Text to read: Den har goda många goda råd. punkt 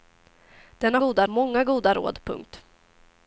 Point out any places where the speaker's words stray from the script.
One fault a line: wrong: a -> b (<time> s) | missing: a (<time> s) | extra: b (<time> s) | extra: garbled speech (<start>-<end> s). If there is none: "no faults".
no faults